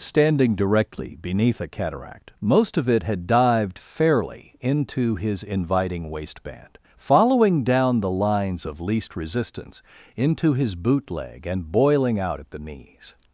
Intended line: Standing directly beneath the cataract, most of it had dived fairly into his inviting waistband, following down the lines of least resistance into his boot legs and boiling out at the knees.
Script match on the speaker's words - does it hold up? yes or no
no